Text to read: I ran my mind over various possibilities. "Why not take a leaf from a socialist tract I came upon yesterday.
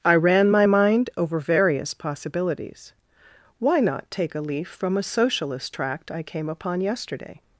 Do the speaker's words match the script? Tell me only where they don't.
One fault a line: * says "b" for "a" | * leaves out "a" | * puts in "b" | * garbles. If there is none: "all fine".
all fine